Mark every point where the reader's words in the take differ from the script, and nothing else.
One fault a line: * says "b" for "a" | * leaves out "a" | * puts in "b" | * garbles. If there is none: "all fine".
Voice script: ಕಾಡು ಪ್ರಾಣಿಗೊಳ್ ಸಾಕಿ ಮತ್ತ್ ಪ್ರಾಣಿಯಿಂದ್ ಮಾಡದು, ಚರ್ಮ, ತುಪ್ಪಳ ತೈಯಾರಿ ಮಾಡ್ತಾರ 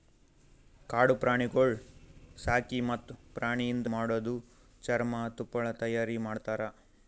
all fine